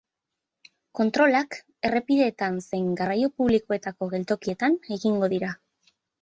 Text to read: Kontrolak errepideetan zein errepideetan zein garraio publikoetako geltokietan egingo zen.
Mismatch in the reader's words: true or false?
true